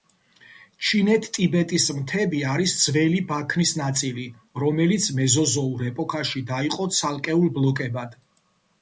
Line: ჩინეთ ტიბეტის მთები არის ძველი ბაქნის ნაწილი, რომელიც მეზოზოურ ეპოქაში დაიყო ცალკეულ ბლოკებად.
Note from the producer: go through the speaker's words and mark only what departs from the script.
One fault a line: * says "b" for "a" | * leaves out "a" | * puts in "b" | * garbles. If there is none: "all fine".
all fine